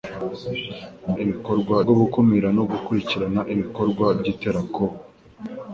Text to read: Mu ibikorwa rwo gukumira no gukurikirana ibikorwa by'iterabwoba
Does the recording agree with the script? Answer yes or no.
yes